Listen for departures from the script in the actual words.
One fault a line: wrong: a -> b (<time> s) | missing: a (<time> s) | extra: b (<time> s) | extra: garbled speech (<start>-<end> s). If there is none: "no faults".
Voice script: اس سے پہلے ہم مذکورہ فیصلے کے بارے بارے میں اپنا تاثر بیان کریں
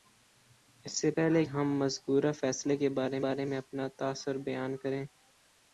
no faults